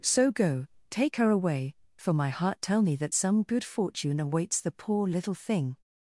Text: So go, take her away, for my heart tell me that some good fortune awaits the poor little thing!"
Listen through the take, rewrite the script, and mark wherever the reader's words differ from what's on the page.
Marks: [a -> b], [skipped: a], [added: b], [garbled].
So go, take her away, for my heart tell me that some good fortune awaits the poor little thing!"